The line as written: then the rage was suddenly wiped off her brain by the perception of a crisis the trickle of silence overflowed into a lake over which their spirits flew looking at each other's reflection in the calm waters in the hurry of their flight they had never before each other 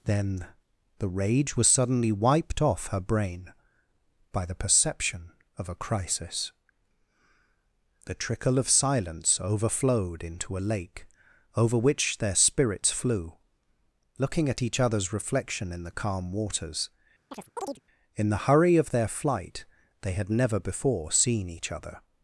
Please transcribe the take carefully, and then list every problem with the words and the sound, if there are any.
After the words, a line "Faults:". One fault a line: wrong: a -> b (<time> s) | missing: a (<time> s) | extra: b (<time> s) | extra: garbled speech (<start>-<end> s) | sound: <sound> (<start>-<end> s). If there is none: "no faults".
then the rage was suddenly wiped off her brain by the perception of a crisis the trickle of silence overflowed into a lake over which their spirits flew looking at each other's reflection in the calm waters in the hurry of their flight they had never before seen each other
Faults:
sound: chirp (17.3-17.8 s)
extra: seen (21.1 s)